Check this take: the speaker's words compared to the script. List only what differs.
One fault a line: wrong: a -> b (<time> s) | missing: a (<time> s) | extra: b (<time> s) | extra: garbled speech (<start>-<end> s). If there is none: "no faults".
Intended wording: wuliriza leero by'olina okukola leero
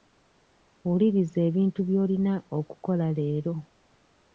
wrong: leero -> ebintu (1.5 s)